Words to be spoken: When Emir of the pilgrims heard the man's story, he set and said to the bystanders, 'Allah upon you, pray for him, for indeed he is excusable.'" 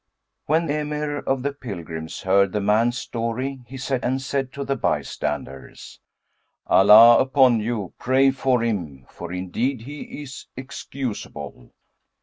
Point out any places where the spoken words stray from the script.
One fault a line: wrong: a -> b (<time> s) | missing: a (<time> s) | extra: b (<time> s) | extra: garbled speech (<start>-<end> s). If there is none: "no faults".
no faults